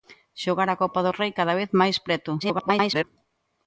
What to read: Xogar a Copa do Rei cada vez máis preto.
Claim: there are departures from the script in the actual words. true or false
true